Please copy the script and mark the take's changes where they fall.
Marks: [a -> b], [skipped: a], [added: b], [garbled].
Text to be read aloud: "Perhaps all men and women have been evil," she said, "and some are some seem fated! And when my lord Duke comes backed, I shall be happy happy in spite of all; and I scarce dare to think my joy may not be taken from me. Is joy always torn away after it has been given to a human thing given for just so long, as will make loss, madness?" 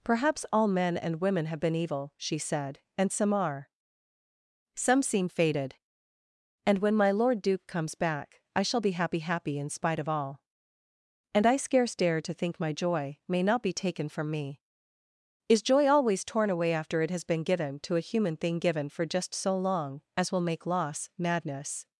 "Perhaps all men and women have been evil," she said, "and some are some seem fated! And when my lord Duke comes [backed, -> back] I shall be happy happy in spite of all; and I scarce dare to think my joy may not be taken from me. Is joy always torn away after it has been given to a human thing given for just so long, as will make loss, madness?"